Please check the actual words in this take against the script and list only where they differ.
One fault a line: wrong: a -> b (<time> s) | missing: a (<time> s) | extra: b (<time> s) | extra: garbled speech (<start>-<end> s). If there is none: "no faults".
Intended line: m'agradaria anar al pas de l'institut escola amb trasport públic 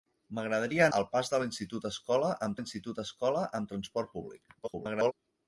missing: anar (0.8 s)
extra: l'institut escola amb (2.6 s)
extra: garbled speech (4.6-5.1 s)